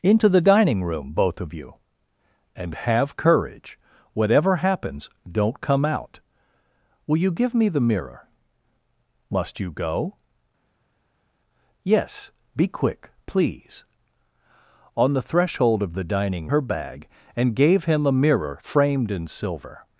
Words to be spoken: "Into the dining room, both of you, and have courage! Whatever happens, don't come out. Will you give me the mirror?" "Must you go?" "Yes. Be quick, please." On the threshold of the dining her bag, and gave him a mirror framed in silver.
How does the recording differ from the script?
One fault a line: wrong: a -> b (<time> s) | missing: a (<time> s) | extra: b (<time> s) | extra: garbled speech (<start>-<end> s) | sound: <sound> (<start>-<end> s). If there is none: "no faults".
no faults